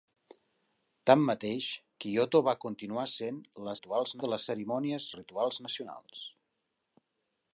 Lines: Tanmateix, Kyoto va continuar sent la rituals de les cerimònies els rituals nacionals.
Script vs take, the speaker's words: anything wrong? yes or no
no